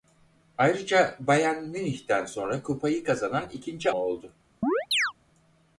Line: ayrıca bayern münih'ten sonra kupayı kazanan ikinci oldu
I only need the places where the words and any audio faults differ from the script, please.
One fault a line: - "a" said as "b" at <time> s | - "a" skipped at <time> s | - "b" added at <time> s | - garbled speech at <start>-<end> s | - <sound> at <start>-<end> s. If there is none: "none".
- chirp at 4.6-5.1 s